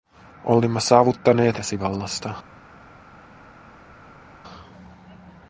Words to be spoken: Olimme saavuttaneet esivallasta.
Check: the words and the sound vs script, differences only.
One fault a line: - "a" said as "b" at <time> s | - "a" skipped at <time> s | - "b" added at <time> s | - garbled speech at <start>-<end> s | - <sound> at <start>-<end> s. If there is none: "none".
none